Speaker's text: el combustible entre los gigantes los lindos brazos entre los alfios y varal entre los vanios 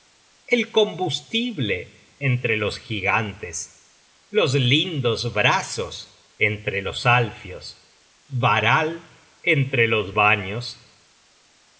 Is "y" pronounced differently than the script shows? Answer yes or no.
yes